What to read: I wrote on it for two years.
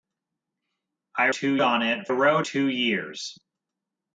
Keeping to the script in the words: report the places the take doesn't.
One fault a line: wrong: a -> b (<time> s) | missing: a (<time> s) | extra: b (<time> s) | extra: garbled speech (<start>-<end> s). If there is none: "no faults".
wrong: wrote -> two (1.3 s)
wrong: for -> wrote (2.1 s)